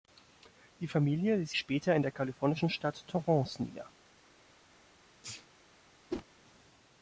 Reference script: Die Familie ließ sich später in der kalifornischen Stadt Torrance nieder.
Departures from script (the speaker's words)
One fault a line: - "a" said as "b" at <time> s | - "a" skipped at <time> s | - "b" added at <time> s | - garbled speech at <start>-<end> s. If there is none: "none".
- "sich" skipped at 1.5 s